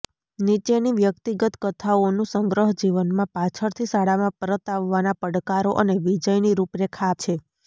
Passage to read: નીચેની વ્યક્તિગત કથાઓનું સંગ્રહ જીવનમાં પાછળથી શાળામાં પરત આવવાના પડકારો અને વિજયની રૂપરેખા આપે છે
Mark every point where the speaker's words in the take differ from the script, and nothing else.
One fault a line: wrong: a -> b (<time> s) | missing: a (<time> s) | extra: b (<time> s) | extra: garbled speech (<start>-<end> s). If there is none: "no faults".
missing: આપે (7.2 s)